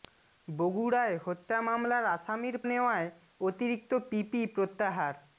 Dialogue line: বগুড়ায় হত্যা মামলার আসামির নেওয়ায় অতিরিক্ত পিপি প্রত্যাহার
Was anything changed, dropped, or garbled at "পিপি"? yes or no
no